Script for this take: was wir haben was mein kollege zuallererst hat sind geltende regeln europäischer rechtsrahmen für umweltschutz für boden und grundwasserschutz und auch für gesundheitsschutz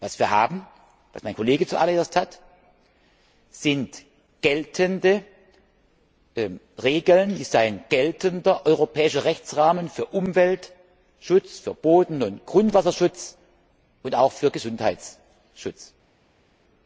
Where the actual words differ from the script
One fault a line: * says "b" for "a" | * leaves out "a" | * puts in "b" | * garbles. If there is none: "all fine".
* puts in "ist ein geltender"